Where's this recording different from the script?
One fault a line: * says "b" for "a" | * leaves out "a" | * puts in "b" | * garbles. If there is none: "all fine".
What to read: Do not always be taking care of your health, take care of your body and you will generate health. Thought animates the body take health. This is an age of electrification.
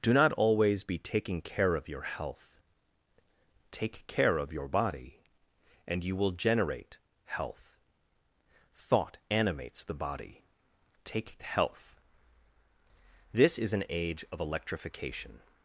all fine